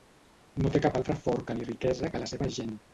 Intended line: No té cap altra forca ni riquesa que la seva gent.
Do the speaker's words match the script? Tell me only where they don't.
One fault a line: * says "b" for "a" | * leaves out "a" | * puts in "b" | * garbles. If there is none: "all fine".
all fine